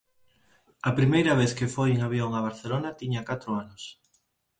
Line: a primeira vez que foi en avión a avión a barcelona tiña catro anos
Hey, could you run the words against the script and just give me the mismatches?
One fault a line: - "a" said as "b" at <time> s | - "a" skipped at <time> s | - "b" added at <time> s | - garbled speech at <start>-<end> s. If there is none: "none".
- "avión a" skipped at 2.5 s